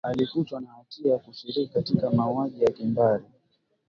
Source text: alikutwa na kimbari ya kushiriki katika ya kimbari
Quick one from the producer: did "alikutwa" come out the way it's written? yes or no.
yes